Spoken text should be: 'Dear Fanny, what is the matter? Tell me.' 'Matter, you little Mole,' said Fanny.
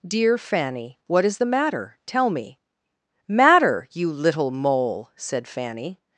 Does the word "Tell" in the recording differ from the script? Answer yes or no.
no